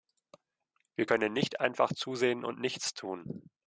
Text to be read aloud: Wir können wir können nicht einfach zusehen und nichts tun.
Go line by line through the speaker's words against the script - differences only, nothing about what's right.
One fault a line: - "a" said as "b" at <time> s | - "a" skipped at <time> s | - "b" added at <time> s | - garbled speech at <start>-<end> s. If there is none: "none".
- "wir können" skipped at 1.3 s